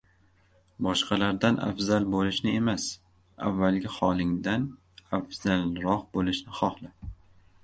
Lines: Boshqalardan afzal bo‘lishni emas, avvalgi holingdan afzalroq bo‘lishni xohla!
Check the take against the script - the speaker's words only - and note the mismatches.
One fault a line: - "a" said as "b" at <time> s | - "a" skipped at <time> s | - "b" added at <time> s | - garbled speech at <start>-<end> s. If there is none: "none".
none